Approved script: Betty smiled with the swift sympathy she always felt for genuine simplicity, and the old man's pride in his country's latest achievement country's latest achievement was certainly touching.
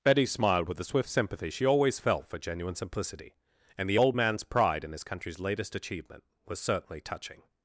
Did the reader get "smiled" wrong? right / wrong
right